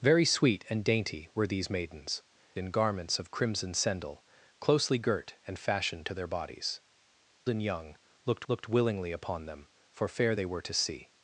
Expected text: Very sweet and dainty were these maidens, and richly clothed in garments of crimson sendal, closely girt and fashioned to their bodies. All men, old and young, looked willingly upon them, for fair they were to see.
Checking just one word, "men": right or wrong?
wrong